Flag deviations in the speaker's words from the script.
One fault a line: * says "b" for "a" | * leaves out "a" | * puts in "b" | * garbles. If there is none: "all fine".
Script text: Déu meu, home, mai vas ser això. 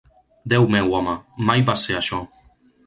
all fine